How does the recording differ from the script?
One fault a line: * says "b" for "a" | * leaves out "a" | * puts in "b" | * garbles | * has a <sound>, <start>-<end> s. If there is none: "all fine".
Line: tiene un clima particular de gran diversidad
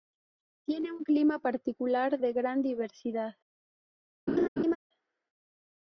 * has a laugh, 4.3-4.8 s